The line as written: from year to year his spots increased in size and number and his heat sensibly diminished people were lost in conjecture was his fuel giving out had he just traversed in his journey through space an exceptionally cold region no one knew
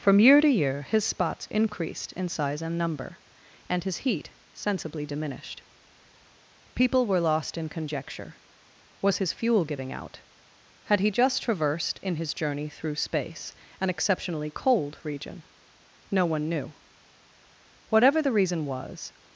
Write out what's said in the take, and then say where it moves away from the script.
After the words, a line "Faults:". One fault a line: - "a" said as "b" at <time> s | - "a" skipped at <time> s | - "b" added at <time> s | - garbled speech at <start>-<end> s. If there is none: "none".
from year to year his spots increased in size and number and his heat sensibly diminished people were lost in conjecture was his fuel giving out had he just traversed in his journey through space an exceptionally cold region no one knew whatever the reason was
Faults:
- "whatever the reason was" added at 17.9 s